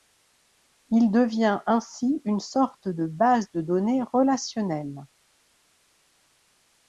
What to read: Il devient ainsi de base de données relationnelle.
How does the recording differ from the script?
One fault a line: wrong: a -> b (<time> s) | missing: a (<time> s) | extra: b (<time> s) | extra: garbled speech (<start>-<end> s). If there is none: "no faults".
extra: une sorte (2.2 s)